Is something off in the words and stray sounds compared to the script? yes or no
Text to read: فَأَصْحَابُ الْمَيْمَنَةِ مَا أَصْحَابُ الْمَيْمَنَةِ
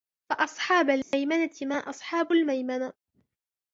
yes